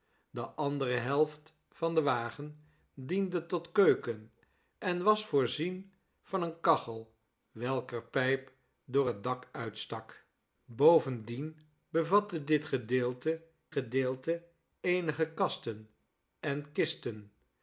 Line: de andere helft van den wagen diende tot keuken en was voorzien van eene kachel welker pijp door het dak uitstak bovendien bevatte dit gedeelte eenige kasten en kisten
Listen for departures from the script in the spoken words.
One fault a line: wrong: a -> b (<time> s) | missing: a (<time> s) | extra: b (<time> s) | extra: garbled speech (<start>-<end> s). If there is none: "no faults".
extra: gedeelte (13.7 s)